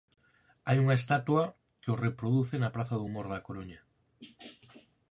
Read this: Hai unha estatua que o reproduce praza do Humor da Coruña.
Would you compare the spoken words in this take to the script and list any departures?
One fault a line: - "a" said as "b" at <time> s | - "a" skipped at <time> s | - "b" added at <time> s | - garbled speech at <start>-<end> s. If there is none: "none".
- "na" added at 2.6 s